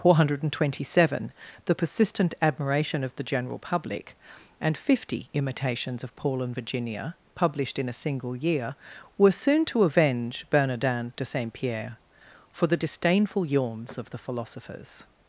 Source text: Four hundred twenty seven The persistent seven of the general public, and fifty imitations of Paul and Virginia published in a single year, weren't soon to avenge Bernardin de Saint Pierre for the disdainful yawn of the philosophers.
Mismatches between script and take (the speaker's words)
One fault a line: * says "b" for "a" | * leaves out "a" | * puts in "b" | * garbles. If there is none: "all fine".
* says "admiration" for "seven"
* says "were" for "weren't"
* says "yawns" for "yawn"